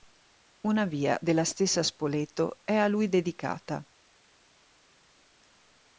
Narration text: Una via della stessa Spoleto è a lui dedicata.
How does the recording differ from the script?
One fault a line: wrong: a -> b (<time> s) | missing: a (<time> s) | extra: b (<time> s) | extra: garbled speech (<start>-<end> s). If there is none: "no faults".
no faults